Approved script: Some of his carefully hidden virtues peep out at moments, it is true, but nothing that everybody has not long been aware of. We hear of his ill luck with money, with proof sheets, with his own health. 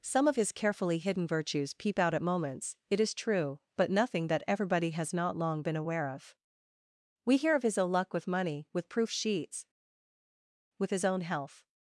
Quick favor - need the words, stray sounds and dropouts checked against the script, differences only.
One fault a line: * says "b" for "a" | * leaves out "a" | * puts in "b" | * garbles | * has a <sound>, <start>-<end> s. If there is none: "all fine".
all fine